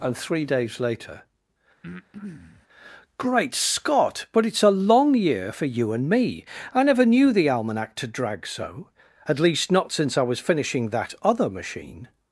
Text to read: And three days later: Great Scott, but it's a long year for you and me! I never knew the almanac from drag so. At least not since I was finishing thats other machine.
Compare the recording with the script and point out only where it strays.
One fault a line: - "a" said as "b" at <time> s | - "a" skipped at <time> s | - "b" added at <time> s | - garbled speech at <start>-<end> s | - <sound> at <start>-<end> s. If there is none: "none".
- breath at 1.8-2.7 s
- "from" said as "to" at 8.0 s
- "thats" said as "that" at 10.9 s